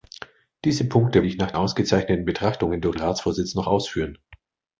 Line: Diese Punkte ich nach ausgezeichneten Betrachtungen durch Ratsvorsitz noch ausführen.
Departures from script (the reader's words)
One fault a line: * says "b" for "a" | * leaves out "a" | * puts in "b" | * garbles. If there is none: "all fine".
all fine